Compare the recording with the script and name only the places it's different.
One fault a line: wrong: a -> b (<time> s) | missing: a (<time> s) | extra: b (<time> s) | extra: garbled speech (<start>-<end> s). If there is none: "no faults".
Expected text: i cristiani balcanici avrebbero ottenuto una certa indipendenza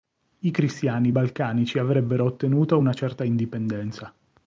no faults